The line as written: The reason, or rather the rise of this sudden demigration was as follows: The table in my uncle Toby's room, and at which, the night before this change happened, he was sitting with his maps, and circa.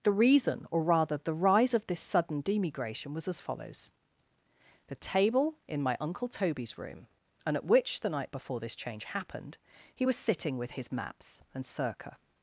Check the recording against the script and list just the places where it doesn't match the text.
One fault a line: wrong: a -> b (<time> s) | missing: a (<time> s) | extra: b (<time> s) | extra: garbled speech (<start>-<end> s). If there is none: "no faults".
no faults